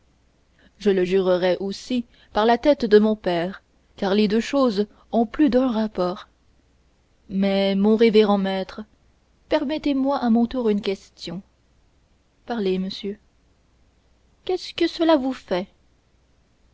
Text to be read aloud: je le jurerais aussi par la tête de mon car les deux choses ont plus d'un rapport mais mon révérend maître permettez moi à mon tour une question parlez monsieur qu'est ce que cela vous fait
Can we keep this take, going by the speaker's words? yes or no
no